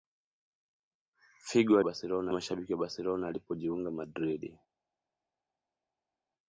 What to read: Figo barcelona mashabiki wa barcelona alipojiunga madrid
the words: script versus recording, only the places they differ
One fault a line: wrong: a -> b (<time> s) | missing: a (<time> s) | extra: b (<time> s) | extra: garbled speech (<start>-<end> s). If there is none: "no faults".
no faults